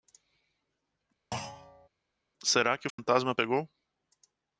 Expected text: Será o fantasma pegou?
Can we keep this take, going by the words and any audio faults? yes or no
no